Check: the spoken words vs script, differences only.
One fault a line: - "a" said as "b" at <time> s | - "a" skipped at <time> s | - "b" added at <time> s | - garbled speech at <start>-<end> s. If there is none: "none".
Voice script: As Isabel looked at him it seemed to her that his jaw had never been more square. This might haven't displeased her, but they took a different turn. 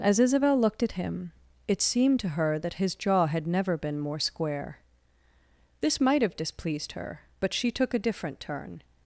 - "haven't" said as "have" at 6.2 s
- "they" said as "she" at 7.5 s